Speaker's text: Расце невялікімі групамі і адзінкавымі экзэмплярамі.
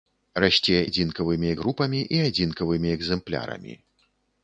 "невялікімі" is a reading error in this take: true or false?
true